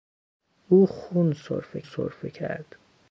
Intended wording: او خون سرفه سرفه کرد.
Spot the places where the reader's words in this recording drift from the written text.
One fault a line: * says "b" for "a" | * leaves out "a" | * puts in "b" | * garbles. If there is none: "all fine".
all fine